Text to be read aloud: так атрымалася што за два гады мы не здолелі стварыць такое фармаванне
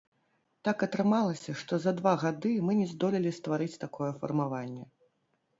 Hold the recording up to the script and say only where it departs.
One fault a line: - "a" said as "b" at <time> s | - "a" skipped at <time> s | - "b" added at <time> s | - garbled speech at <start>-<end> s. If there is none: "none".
none